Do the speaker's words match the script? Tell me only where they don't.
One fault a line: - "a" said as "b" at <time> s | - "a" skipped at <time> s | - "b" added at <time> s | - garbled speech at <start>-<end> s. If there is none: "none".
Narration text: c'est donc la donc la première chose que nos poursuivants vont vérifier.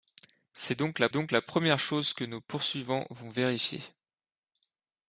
none